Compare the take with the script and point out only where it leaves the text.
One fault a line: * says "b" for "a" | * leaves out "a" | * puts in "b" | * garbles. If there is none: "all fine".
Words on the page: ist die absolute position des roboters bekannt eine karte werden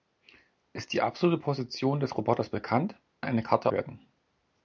all fine